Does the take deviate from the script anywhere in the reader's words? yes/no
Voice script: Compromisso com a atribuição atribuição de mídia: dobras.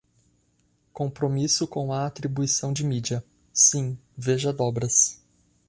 yes